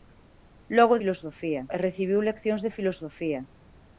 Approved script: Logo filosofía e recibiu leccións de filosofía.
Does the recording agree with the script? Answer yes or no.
yes